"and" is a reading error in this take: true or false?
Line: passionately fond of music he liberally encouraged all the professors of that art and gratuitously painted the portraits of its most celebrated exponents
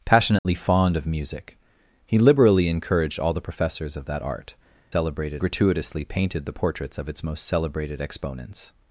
true